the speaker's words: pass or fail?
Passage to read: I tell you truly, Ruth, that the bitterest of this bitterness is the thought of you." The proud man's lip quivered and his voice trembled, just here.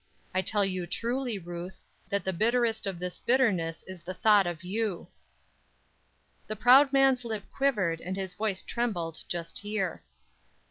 pass